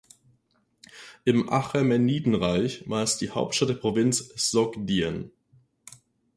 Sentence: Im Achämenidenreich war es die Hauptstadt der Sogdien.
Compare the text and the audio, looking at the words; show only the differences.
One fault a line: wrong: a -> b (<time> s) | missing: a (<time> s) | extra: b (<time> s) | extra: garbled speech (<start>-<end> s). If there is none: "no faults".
extra: Provinz (3.7 s)